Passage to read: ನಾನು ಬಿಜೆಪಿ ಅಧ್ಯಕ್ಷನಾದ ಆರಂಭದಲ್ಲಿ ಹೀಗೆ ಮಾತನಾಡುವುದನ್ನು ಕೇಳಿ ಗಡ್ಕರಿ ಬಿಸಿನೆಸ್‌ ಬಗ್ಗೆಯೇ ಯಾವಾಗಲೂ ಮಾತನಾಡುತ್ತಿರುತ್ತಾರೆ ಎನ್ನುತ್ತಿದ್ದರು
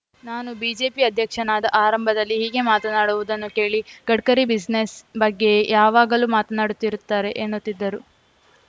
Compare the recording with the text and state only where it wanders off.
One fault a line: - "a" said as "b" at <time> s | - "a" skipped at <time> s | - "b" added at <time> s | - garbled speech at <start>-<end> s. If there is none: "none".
none